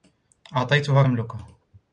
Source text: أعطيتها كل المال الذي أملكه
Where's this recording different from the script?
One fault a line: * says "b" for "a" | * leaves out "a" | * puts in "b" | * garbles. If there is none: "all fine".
* leaves out "كل المال الذي"